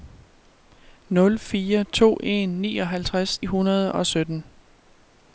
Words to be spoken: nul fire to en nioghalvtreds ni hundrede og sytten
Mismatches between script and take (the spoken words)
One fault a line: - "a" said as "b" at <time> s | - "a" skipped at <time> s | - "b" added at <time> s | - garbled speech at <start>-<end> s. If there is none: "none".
- "ni" skipped at 3.5 s